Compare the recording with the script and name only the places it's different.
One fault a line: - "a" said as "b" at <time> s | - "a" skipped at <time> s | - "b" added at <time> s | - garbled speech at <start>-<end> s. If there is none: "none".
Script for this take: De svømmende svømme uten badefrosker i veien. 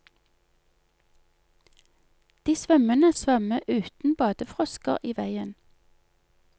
none